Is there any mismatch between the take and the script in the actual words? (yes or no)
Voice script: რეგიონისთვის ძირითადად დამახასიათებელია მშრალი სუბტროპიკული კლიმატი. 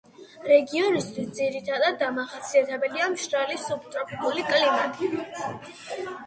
no